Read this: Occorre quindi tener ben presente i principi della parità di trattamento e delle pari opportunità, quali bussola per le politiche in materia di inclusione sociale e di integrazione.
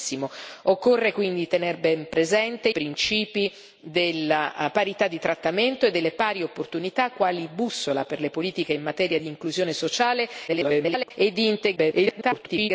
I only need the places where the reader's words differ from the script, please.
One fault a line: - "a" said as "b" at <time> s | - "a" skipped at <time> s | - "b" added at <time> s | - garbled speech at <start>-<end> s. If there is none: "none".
- "i" skipped at 2.7 s
- garbled speech at 10.5-11.1 s
- garbled speech at 11.8-12.7 s